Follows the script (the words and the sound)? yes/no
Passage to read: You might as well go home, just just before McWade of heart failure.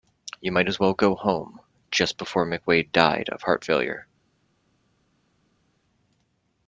no